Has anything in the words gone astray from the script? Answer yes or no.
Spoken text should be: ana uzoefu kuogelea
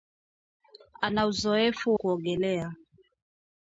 no